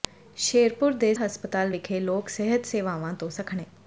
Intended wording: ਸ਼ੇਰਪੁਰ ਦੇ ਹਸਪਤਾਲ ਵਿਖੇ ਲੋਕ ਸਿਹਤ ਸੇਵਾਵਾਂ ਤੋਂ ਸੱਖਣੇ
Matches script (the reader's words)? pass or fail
pass